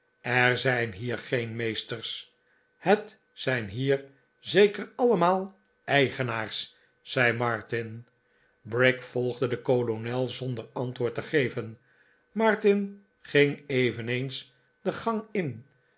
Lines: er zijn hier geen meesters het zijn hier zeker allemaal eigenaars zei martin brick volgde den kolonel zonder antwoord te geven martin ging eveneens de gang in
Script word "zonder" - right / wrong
right